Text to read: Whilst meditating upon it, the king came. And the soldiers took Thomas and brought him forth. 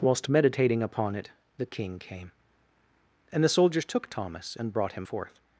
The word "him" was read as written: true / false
true